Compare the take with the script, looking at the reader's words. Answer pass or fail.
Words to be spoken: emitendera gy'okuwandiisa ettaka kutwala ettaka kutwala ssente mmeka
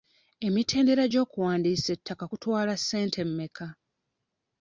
fail